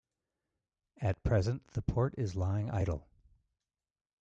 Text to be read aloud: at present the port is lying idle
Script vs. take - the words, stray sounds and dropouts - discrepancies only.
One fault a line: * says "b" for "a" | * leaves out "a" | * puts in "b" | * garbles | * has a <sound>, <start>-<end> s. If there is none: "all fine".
all fine